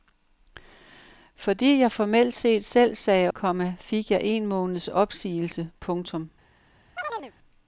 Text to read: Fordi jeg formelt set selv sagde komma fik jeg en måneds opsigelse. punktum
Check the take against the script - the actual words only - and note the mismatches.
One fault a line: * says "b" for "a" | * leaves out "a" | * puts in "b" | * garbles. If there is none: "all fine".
all fine